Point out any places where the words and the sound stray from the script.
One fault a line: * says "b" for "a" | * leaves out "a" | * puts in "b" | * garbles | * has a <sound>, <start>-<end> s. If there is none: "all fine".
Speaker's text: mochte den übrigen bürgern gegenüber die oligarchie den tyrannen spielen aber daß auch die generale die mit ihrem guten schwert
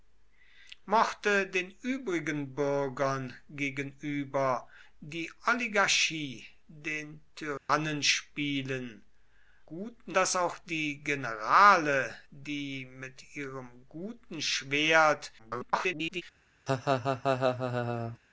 * has a dropout, 7.6-7.7 s
* says "guten" for "aber"
* garbles
* has a laugh, 16.7-18.2 s